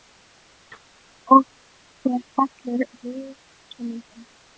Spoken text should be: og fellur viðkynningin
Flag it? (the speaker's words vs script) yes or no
yes